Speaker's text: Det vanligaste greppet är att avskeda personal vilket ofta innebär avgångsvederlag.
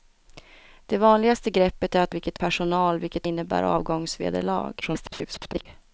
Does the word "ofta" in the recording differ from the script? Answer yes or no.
yes